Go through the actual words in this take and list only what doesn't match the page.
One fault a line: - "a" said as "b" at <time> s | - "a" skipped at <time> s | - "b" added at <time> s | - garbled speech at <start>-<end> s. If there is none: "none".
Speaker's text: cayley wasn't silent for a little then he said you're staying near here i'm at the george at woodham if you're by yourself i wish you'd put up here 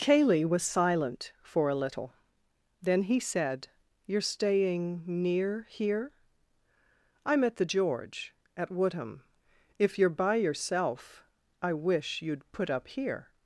- "wasn't" said as "was" at 0.4 s